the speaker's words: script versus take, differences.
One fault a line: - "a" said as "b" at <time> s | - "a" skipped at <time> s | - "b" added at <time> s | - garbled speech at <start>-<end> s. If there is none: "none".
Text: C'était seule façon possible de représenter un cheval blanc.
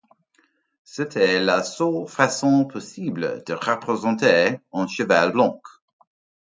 - "la" added at 1.4 s